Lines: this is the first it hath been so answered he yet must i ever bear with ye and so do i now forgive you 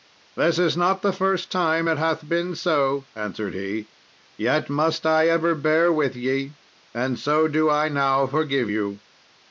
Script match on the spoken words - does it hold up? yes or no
no